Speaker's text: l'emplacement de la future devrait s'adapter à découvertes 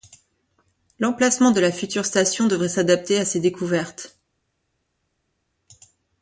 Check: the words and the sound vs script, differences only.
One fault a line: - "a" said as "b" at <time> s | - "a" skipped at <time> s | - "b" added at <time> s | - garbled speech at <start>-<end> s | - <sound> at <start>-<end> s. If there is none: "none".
- "station" added at 2.1 s
- "ces" added at 3.2 s